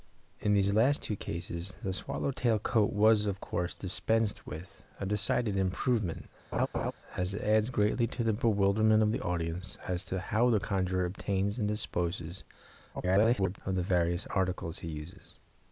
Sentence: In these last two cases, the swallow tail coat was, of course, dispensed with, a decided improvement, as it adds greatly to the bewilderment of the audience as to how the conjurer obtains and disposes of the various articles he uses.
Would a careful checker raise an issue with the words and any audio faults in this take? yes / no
yes